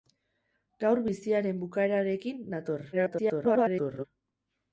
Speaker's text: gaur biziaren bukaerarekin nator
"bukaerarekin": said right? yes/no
yes